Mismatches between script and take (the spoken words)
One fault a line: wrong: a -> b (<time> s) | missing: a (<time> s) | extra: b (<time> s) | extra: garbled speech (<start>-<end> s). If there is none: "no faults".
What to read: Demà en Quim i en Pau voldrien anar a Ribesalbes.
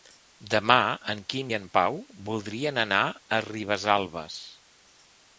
no faults